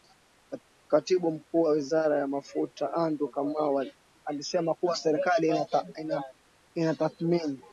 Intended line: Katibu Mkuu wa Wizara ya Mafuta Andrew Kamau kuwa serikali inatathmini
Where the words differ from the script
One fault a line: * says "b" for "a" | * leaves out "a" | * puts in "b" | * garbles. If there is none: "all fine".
* puts in "alisema"